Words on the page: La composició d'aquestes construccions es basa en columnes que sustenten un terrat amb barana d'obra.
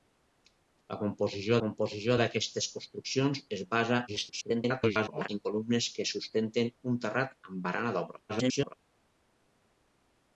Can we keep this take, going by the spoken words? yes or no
no